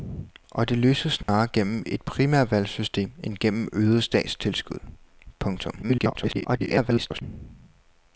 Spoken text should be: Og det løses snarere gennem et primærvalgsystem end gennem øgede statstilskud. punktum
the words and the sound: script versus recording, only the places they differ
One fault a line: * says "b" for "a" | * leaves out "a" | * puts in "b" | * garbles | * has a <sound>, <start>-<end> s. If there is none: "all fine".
* has a dropout, 1.2-1.3 s
* garbles